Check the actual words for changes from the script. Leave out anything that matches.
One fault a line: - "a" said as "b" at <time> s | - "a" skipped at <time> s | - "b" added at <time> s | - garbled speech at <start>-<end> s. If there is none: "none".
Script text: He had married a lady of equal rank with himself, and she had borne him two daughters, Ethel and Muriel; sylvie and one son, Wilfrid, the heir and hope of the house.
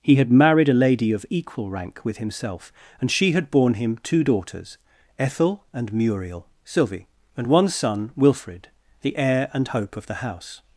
none